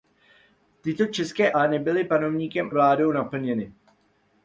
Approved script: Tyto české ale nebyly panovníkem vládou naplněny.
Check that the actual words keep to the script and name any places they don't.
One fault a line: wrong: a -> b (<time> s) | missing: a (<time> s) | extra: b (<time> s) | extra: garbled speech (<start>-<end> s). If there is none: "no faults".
no faults